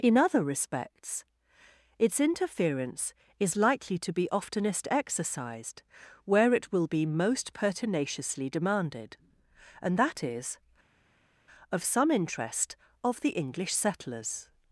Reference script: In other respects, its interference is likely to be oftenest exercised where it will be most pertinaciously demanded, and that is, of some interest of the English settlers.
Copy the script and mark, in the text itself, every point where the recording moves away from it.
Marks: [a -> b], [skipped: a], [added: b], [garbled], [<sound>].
In other respects, its interference is likely to be oftenest exercised where it will be most pertinaciously demanded, and that is, of some interest of the English settlers.